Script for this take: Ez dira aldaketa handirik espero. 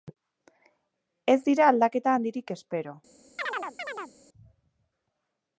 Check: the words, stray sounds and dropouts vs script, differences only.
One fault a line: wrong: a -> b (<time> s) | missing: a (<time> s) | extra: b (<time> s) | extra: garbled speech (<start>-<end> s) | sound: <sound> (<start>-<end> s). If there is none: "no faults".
sound: chirp (3.4-4.1 s)